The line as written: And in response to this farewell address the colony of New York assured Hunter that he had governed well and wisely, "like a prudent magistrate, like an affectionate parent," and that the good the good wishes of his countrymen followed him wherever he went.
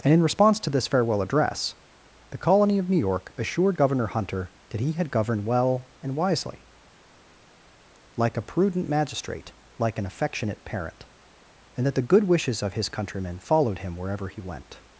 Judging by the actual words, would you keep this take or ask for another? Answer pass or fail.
fail